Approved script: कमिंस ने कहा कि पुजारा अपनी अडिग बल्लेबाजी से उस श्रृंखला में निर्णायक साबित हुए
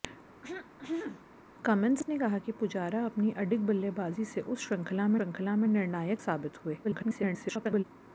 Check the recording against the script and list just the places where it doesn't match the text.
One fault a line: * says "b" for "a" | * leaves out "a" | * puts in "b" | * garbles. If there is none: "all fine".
* puts in "श्रृंखला में"
* garbles